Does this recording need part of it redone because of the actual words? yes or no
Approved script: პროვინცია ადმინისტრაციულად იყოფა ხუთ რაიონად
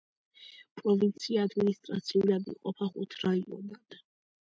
no